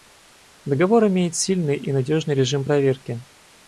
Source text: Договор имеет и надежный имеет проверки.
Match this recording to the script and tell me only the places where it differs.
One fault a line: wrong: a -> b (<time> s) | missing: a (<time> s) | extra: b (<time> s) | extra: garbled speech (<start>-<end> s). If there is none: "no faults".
extra: сильный (1.4 s)
wrong: имеет -> режим (2.3 s)